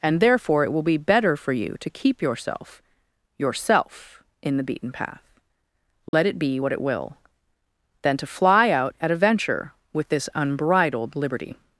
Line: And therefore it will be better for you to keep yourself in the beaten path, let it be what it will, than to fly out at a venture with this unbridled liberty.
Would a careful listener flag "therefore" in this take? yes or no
no